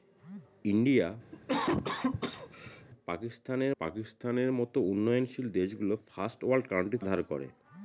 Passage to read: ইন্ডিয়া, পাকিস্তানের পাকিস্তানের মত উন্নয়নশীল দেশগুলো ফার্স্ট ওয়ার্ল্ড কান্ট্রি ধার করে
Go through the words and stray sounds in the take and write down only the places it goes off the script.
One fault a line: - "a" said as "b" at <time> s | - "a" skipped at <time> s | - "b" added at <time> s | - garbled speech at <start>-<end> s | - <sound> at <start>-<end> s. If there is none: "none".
- cough at 1.3-2.9 s